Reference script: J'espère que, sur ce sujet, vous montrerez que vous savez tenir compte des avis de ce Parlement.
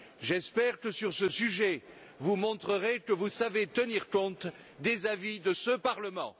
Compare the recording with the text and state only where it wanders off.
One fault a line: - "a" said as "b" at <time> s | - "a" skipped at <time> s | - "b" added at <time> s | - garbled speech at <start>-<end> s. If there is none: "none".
none